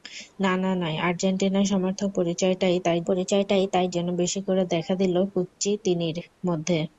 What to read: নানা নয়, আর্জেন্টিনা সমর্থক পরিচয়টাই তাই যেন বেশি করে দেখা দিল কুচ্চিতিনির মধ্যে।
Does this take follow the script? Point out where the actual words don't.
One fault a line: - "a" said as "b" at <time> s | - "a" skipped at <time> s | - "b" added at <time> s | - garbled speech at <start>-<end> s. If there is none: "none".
- "পরিচয়টাই তাই" added at 3.1 s